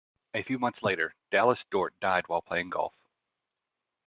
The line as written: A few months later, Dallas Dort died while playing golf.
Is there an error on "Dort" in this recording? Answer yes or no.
no